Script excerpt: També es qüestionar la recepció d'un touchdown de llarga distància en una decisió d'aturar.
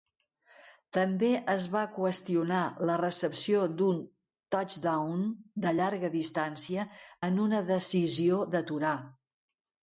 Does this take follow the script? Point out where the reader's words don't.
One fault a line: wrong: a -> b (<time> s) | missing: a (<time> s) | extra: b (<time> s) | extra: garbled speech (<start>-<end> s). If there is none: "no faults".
extra: va (1.7 s)